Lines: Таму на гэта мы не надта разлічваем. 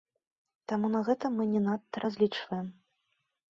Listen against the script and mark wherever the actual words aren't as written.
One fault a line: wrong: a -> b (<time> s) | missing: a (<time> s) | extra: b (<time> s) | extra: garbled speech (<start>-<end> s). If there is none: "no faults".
no faults